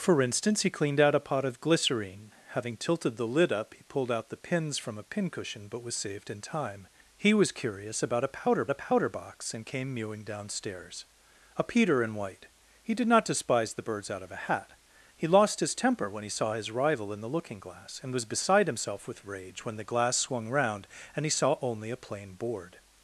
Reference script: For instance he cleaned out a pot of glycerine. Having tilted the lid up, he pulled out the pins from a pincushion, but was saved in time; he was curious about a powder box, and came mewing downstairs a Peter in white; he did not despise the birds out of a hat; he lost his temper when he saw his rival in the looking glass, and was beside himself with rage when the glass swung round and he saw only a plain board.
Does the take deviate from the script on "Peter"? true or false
false